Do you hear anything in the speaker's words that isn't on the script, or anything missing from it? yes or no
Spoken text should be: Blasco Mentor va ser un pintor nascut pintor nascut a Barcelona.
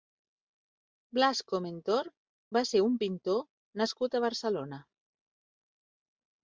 yes